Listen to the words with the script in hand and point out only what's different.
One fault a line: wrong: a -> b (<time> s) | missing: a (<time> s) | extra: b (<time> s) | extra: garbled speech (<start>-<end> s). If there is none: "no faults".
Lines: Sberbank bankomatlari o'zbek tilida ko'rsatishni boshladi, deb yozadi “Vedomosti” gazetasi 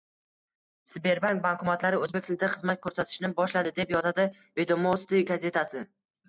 extra: xizmat (2.6 s)